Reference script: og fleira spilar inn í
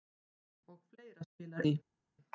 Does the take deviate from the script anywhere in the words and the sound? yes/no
yes